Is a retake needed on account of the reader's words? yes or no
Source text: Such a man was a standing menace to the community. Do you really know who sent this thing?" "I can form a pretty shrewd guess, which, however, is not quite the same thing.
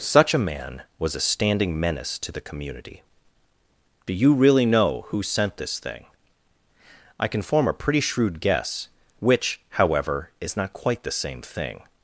no